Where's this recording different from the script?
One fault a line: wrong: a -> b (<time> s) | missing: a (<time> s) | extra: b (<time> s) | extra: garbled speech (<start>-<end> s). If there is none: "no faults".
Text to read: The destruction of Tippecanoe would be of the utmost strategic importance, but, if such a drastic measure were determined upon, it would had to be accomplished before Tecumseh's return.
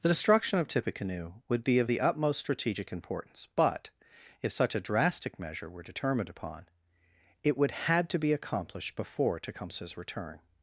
no faults